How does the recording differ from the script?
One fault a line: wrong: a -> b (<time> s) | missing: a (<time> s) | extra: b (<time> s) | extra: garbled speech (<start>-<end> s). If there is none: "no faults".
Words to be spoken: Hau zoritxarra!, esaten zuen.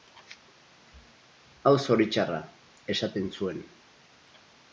no faults